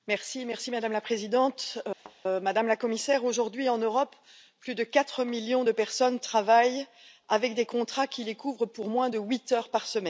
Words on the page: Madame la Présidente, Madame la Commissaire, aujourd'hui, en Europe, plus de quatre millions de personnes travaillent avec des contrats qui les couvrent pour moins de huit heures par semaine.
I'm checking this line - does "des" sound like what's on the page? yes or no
yes